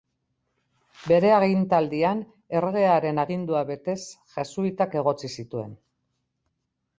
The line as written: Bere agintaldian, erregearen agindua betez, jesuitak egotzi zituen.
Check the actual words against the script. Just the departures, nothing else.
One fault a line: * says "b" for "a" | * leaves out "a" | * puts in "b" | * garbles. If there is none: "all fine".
all fine